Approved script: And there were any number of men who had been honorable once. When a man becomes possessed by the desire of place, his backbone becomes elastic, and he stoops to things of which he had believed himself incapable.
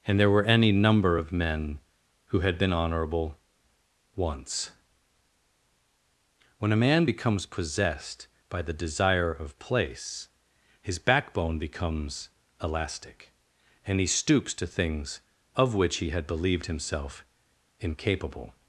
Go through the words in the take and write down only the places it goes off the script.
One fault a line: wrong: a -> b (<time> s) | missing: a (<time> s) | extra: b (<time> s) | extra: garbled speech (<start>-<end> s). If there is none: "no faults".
no faults